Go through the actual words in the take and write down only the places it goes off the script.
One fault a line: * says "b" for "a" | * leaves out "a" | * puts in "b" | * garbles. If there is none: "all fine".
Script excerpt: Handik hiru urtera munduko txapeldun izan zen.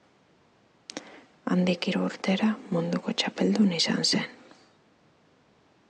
all fine